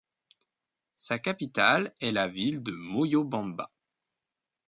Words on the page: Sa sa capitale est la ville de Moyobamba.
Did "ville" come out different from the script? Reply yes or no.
no